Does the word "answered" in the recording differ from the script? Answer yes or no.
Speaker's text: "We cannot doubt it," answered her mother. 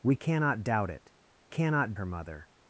yes